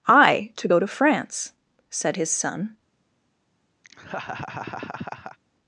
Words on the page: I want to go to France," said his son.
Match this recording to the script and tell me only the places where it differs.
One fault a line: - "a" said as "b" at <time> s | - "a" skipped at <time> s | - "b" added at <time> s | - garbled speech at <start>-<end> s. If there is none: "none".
- "want" skipped at 0.5 s